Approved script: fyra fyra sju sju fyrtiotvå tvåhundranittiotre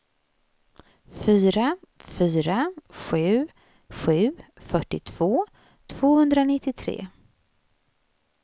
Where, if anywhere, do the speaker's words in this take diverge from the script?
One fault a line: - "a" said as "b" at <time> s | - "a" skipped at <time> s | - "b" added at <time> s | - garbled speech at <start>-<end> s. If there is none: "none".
none